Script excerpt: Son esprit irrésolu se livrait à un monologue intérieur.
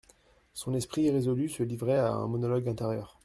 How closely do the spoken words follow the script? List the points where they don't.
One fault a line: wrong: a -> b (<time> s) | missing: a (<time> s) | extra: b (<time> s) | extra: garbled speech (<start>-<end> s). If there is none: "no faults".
no faults